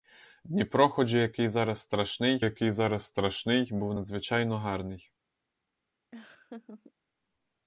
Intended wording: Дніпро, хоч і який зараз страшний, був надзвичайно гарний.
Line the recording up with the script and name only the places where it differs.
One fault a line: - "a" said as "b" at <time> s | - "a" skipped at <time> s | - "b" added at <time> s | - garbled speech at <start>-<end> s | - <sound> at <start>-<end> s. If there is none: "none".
- "який зараз страшний" added at 2.4 s
- laugh at 6.1-6.9 s